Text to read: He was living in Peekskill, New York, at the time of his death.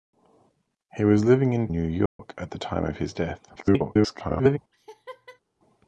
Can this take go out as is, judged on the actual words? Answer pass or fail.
fail